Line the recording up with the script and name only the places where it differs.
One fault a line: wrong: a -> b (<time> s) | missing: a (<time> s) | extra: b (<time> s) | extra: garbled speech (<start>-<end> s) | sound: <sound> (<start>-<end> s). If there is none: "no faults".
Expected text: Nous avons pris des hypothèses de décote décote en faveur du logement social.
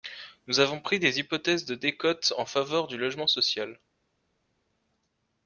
missing: décote (2.3 s)